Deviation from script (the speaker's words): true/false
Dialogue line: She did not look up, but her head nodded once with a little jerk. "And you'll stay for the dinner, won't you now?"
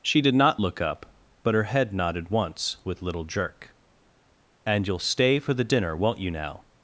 true